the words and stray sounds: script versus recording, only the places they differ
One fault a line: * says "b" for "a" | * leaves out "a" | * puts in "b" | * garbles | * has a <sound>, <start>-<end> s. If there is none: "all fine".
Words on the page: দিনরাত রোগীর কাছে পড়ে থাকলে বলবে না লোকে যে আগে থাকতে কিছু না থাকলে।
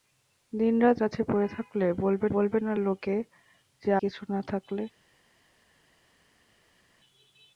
* leaves out "রোগীর"
* puts in "বলবে"
* leaves out "আগে থাকতে"